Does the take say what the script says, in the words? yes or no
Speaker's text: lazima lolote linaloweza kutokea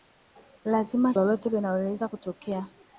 yes